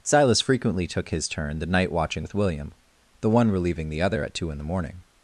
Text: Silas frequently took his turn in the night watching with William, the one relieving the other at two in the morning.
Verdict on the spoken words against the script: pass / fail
fail